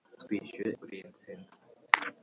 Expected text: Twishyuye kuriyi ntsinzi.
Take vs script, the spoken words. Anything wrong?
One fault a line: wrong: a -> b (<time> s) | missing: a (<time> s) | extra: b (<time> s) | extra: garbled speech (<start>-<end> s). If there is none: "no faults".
no faults